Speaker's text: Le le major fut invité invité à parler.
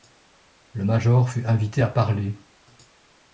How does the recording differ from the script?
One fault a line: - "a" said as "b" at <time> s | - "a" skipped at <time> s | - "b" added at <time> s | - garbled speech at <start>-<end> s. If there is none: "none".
- "le" skipped at 0.8 s
- "invité" skipped at 1.8 s